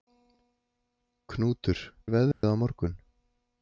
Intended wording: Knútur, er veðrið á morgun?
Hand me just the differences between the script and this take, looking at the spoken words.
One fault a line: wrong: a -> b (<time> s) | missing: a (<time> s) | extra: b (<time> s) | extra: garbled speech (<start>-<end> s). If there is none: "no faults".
no faults